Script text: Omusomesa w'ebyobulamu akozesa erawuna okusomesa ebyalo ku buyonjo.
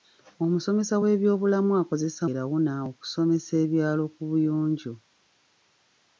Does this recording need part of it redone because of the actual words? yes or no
no